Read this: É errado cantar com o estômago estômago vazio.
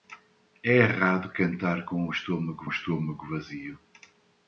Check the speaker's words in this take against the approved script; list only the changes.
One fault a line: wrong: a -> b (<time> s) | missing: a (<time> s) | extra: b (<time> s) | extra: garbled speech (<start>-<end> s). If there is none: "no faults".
no faults